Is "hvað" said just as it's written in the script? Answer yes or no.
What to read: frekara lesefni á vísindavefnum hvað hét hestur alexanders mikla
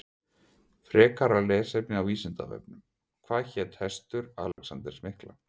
yes